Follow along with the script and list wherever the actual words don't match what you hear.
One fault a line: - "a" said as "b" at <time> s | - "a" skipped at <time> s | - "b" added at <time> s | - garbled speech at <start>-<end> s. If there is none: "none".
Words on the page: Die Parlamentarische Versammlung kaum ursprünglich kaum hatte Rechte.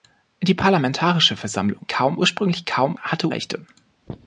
none